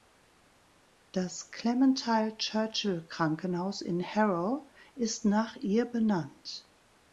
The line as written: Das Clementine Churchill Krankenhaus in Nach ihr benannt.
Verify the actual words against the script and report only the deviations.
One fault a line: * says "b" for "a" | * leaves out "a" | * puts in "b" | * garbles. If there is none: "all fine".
* puts in "Harrow ist"